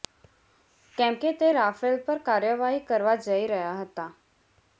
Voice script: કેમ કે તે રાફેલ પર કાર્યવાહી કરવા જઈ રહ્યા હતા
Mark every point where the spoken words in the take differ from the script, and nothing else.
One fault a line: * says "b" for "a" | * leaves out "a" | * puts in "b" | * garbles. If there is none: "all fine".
all fine